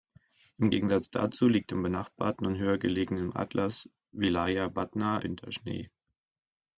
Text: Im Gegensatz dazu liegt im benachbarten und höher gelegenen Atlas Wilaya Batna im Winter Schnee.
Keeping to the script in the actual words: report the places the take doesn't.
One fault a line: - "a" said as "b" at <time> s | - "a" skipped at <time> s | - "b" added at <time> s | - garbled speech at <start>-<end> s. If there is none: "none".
- "im" skipped at 5.2 s